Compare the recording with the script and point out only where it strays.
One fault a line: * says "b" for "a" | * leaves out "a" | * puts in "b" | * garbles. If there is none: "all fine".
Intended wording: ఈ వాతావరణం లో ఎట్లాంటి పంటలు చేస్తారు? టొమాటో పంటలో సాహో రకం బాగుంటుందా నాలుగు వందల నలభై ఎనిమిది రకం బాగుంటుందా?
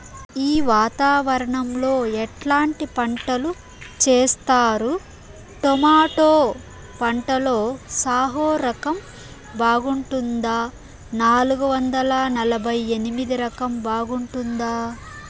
all fine